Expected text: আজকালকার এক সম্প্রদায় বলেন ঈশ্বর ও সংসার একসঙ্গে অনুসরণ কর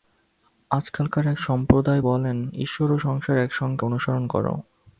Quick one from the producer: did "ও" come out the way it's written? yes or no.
yes